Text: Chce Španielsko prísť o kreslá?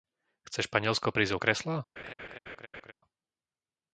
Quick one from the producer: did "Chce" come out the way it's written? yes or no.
yes